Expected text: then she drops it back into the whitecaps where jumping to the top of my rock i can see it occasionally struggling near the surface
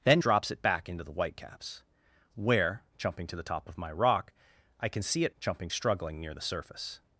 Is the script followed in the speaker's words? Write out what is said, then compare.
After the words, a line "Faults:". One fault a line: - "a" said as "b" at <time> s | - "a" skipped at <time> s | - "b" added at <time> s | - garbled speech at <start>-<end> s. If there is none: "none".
then drops it back into the whitecaps where jumping to the top of my rock i can see it jumping struggling near the surface
Faults:
- "she" skipped at 0.2 s
- "occasionally" said as "jumping" at 5.4 s